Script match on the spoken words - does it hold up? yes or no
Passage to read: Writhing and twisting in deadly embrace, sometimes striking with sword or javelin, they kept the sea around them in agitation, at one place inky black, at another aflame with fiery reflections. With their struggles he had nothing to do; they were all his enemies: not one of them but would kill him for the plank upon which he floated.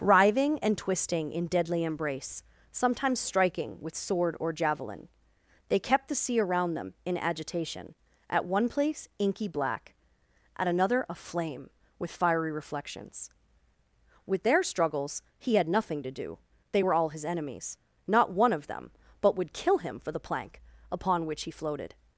yes